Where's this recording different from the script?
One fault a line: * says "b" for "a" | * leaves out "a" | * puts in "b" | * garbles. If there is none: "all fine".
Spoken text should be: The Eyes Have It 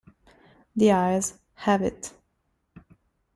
all fine